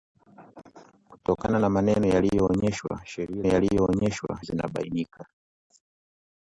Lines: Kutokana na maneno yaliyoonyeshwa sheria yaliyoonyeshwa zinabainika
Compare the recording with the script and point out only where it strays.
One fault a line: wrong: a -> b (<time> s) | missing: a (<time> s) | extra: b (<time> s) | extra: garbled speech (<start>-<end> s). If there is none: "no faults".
no faults